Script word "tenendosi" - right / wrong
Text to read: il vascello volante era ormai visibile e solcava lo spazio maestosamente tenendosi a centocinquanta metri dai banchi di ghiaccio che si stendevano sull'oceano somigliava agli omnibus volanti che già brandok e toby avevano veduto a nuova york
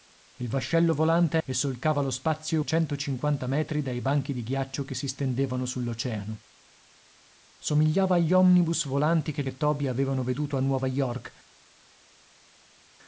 wrong